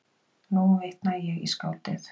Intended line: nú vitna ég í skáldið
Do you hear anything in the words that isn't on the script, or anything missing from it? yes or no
no